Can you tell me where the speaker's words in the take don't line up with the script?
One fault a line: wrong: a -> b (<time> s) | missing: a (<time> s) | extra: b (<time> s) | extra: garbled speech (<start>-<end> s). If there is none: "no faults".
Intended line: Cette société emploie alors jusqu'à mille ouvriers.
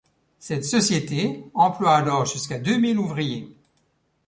extra: deux (2.6 s)